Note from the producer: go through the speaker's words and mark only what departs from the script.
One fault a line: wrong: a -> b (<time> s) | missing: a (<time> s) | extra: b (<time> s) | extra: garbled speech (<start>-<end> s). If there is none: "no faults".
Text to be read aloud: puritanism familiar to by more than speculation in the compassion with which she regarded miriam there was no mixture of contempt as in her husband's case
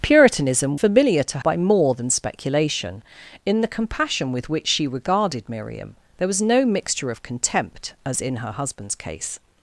no faults